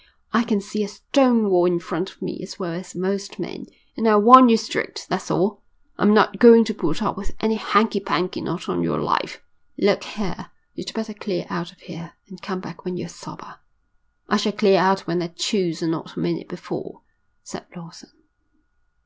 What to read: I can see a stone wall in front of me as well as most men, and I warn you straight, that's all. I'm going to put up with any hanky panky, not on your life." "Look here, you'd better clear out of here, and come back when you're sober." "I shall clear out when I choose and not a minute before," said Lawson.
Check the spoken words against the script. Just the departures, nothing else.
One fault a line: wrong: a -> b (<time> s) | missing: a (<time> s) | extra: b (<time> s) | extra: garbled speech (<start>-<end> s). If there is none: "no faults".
extra: not (6.1 s)